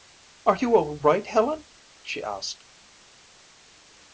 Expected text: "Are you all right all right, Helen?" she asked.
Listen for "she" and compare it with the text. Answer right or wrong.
right